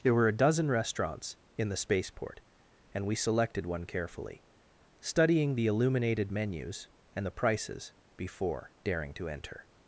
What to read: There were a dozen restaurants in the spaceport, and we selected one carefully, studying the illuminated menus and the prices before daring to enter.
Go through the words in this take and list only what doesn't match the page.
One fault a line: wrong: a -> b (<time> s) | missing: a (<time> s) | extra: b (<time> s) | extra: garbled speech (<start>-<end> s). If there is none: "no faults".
no faults